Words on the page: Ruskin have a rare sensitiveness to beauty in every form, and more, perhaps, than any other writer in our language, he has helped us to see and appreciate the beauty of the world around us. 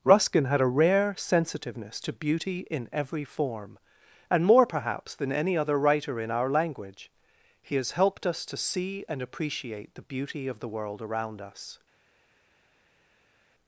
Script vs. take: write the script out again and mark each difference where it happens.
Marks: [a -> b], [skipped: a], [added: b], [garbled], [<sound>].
Ruskin [have -> had] a rare sensitiveness to beauty in every form, and more, perhaps, than any other writer in our language, he has helped us to see and appreciate the beauty of the world around us.